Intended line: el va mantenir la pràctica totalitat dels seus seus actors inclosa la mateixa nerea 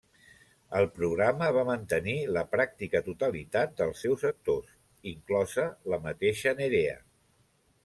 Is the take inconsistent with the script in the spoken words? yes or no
yes